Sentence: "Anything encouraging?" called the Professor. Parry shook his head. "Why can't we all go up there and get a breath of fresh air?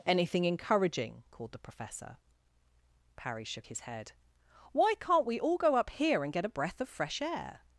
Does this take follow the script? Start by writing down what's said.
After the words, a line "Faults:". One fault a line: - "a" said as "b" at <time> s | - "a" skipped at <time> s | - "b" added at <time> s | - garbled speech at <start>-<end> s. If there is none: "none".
"Anything encouraging?" called the Professor. Parry shook his head. "Why can't we all go up here and get a breath of fresh air?
Faults:
- "there" said as "here" at 5.9 s